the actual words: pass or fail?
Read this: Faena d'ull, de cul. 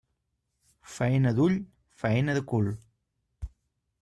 fail